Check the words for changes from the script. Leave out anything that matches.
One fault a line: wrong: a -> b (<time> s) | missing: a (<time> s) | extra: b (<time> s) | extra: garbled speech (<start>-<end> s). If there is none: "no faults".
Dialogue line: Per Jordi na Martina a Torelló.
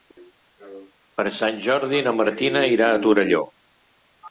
extra: Sant (1.4 s)
extra: irà (2.8 s)